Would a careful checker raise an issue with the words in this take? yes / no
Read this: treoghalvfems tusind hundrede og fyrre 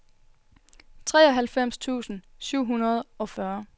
yes